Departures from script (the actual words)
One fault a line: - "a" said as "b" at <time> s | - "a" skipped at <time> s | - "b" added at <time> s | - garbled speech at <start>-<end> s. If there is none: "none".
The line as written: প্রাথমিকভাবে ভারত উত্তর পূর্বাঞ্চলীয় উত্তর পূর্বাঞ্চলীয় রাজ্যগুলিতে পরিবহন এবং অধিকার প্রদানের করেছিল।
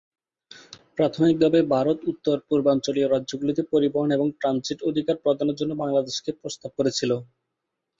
- "উত্তর পূর্বাঞ্চলীয়" skipped at 3.1 s
- "ট্রানজিট" added at 4.4 s
- "জন্য বাংলাদেশকে প্রস্তাব" added at 5.6 s